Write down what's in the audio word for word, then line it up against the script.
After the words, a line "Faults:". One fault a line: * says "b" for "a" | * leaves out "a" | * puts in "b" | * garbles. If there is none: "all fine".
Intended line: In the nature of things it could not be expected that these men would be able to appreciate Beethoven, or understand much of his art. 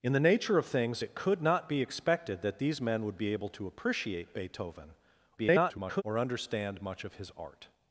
In the nature of things it could not be expected that these men would be able to appreciate Beethoven, [garbled] or understand much of his art.
Faults:
* garbles